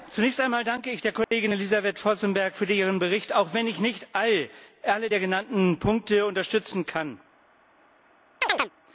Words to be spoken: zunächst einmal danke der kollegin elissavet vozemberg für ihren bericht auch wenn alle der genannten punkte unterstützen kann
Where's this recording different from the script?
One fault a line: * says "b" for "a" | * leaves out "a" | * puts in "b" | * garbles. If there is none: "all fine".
* puts in "ich"
* puts in "ich nicht"